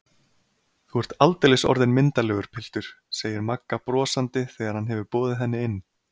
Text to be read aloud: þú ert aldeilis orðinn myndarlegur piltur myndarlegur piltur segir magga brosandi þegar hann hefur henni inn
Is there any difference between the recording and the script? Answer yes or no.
yes